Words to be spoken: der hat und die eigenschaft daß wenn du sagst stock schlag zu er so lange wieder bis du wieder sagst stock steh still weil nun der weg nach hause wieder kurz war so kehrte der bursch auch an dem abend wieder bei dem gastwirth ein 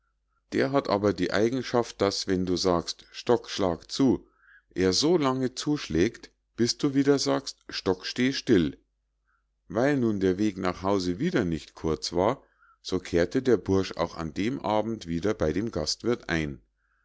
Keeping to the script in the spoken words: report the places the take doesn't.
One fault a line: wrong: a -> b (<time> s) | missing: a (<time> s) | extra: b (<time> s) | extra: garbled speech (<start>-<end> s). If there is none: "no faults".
wrong: und -> aber (0.9 s)
wrong: wieder -> zuschlägt (5.5 s)
extra: nicht (11.4 s)